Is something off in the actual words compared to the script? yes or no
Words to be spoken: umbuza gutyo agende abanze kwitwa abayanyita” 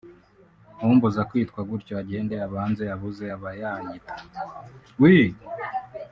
yes